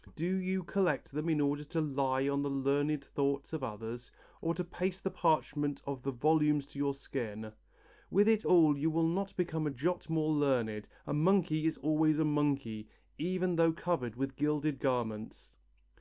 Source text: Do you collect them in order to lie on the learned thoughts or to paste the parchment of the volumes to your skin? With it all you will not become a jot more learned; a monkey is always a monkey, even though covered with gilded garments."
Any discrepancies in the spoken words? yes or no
yes